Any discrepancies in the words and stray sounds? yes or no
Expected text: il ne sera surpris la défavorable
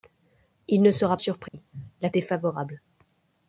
yes